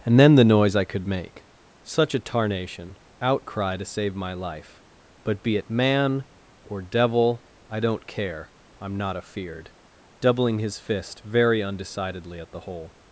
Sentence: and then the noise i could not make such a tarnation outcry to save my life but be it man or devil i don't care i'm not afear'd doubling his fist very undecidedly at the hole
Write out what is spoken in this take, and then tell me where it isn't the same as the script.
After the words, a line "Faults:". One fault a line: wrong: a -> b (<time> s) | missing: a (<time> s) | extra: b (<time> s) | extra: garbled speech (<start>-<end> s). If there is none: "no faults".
and then the noise i could make such a tarnation outcry to save my life but be it man or devil i don't care i'm not afear'd doubling his fist very undecidedly at the hole
Faults:
missing: not (1.1 s)